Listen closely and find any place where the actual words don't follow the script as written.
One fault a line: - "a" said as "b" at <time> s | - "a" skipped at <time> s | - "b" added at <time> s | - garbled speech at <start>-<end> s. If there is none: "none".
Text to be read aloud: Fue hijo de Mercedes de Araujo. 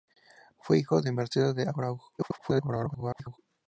- garbled speech at 2.2-3.4 s